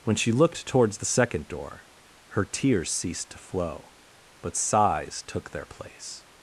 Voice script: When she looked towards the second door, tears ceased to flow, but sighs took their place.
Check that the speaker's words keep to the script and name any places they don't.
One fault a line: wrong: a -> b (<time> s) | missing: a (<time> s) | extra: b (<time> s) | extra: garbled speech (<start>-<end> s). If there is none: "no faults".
extra: her (2.3 s)